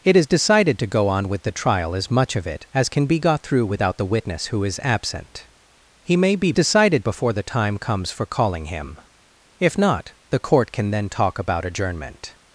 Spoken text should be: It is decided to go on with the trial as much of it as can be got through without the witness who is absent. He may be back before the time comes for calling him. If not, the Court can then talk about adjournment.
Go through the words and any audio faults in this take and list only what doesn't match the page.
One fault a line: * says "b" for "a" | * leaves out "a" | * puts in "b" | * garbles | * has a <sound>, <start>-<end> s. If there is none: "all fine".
* says "decided" for "back"